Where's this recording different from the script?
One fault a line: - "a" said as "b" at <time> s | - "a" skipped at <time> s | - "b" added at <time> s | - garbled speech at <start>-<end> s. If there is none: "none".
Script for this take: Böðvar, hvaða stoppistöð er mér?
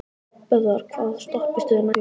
none